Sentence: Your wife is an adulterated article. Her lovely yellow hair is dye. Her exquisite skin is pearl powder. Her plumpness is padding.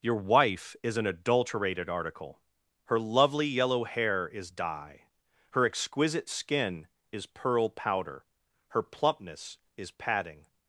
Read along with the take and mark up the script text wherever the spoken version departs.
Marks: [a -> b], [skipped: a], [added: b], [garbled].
Your wife is an adulterated article. Her lovely yellow hair is dye. Her exquisite skin is pearl powder. Her plumpness is padding.